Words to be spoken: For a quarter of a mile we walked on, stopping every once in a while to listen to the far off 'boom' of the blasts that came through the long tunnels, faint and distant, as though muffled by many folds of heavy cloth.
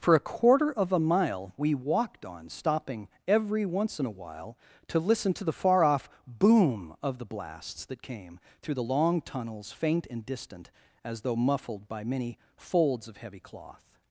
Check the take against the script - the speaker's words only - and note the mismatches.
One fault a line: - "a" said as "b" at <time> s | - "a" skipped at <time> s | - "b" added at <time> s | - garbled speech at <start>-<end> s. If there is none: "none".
none